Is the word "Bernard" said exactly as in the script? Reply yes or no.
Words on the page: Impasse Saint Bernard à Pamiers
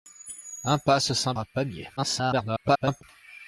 no